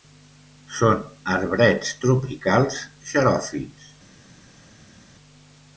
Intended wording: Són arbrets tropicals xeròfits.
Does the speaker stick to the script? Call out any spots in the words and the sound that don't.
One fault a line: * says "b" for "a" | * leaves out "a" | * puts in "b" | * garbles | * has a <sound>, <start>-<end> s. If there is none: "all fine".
all fine